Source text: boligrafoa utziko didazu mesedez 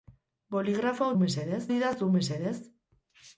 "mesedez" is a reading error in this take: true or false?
false